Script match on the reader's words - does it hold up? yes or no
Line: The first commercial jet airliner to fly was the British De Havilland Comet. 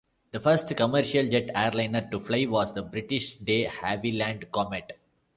yes